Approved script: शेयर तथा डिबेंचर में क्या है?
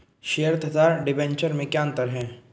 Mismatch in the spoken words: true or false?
true